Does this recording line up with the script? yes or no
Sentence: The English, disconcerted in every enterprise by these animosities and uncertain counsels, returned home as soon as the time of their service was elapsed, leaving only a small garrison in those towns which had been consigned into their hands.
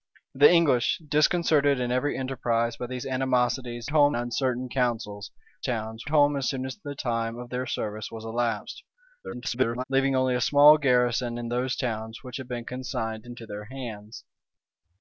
no